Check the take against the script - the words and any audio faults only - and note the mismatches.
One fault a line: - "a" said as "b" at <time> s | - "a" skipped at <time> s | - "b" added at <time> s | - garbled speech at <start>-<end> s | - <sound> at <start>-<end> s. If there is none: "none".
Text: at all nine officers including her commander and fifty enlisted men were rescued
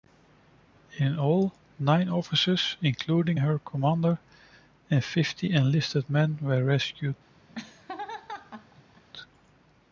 - "at" said as "in" at 1.0 s
- laugh at 7.5-9.0 s